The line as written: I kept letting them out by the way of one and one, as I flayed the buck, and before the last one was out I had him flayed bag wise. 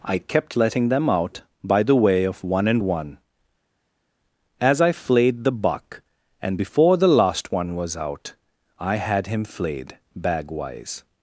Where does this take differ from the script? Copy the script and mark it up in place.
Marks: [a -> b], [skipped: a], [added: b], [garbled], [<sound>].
I kept letting them out by the way of one and one, as I flayed the buck, and before the last one was out I had him flayed bag wise.